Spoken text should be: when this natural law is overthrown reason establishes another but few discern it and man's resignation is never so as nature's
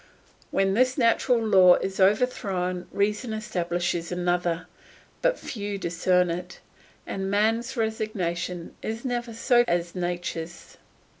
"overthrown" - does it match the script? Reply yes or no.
yes